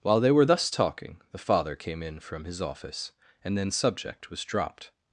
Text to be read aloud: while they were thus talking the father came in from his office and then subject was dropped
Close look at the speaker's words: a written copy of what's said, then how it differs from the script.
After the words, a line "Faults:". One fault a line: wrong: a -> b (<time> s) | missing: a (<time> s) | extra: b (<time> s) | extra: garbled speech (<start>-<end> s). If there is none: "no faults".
while they were thus talking the father came in from his office and then subject was dropped
Faults:
no faults